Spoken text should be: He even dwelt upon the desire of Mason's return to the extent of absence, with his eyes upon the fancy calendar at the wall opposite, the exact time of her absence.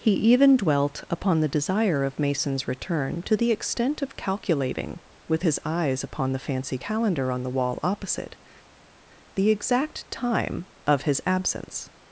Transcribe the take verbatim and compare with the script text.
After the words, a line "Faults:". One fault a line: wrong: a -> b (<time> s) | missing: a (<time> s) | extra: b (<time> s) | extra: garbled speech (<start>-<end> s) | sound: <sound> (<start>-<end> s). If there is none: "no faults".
He even dwelt upon the desire of Mason's return to the extent of calculating, with his eyes upon the fancy calendar on the wall opposite, the exact time of his absence.
Faults:
wrong: absence -> calculating (4.2 s)
wrong: at -> on (7.3 s)
wrong: her -> his (11.0 s)